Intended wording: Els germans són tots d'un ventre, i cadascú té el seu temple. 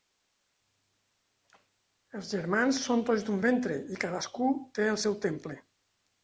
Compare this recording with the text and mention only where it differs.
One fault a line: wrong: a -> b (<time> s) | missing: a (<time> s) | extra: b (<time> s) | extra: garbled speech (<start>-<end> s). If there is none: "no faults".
no faults